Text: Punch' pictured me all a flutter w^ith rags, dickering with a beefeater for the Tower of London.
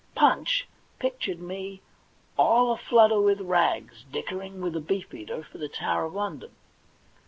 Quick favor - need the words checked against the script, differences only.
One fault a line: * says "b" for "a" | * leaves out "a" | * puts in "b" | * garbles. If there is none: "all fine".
all fine